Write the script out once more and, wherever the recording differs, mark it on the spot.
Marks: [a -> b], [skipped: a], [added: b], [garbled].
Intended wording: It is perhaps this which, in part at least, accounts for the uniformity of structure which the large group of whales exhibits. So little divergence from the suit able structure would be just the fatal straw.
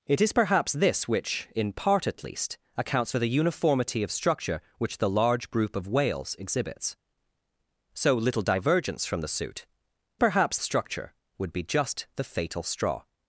It is perhaps this which, in part at least, accounts for the uniformity of structure which the large group of whales exhibits. So little divergence from the suit [able -> perhaps] structure would be just the fatal straw.